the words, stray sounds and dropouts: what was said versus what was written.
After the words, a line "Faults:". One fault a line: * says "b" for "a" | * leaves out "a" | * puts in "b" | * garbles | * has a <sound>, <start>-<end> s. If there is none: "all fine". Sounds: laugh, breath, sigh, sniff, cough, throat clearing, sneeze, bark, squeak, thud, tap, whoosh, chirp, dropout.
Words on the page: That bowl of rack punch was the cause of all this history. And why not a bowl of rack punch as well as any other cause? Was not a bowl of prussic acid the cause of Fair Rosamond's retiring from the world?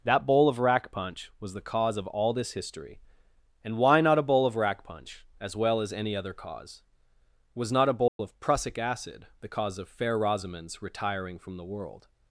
That bowl of rack punch was the cause of all this history. And why not a bowl of rack punch as well as any other cause? Was not a bowl of prussic acid the cause of Fair Rosamond's retiring from the world?
Faults:
* has a dropout, 8.1-8.2 s